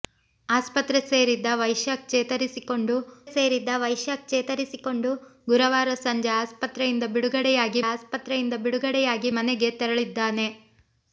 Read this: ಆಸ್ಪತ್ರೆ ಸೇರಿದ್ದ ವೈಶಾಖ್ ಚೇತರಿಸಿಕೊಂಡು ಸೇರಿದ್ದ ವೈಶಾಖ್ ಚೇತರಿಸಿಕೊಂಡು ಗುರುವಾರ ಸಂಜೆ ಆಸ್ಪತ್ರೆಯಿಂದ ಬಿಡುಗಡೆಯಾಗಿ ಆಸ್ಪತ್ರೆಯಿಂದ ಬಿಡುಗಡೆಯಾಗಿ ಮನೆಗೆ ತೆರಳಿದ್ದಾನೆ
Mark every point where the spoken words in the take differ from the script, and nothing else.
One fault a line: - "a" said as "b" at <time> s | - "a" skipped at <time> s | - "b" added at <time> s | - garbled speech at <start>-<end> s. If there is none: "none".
none